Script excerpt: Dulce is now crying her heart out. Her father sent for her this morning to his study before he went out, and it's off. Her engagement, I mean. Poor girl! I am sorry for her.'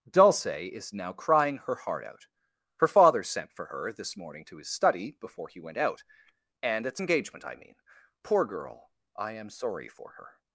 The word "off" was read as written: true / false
false